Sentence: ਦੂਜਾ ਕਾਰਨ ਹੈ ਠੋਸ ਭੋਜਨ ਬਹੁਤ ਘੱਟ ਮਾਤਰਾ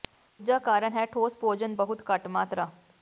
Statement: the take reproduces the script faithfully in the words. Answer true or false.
true